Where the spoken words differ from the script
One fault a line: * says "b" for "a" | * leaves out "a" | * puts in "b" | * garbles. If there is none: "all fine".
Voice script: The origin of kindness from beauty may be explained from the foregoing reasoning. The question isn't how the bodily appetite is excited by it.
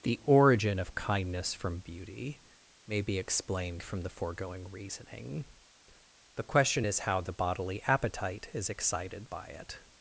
* says "is" for "isn't"